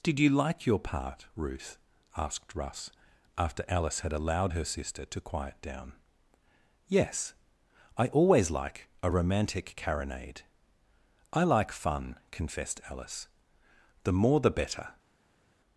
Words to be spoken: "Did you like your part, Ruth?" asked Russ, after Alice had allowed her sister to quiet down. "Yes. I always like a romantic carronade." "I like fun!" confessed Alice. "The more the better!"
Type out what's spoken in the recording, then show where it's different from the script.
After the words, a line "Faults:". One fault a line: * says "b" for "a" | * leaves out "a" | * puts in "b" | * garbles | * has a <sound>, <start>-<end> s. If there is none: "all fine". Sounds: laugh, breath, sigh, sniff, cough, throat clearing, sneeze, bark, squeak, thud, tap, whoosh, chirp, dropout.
"Did you like your part, Ruth?" asked Russ, after Alice had allowed her sister to quiet down. "Yes. I always like a romantic carronade." "I like fun!" confessed Alice. "The more the better!"
Faults:
all fine